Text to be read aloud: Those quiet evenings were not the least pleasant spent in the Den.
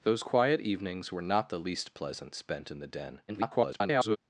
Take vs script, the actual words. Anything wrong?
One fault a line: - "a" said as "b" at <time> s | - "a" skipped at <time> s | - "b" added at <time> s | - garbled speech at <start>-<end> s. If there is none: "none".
- garbled speech at 3.3-4.2 s